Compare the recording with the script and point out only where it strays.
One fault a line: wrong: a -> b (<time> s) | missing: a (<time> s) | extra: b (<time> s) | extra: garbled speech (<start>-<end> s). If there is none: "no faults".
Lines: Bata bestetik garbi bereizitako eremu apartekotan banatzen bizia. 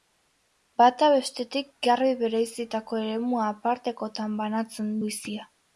no faults